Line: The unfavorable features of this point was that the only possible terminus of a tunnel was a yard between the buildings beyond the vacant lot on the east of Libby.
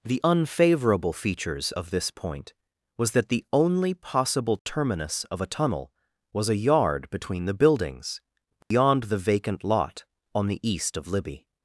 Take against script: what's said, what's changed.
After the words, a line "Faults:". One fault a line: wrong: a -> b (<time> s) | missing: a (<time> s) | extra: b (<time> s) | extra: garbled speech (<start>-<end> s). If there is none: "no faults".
The unfavorable features of this point was that the only possible terminus of a tunnel was a yard between the buildings beyond the vacant lot on the east of Libby.
Faults:
no faults